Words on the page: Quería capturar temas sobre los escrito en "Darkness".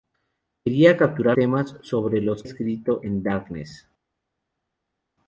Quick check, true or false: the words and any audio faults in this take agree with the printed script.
true